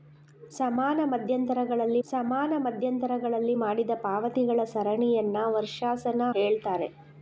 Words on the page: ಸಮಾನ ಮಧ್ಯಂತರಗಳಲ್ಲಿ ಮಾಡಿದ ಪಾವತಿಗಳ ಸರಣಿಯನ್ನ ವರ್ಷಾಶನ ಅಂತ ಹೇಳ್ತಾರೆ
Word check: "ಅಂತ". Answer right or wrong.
wrong